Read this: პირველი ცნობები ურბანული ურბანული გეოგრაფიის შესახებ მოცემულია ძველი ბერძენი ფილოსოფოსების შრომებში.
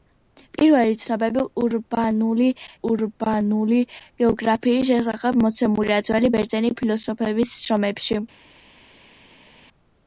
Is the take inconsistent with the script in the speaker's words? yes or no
no